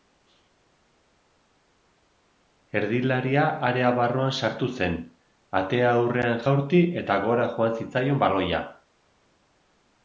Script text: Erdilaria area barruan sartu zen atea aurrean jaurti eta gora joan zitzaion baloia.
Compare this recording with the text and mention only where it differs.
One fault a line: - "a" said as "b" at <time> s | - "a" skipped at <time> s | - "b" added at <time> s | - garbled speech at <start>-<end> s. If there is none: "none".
none